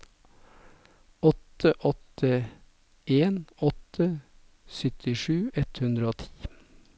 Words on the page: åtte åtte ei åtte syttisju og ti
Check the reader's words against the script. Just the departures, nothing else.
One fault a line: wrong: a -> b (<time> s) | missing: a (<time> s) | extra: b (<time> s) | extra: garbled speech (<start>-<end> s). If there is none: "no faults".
wrong: ei -> en (3.0 s)
extra: ett hundre (5.5 s)